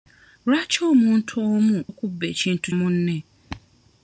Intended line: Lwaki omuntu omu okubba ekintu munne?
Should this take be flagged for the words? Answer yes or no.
no